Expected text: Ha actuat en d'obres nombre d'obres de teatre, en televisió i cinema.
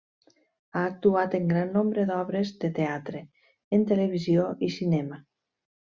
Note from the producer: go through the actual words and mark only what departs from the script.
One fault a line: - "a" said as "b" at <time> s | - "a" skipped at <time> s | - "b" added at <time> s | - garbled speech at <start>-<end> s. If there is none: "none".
- "d'obres" said as "gran" at 1.5 s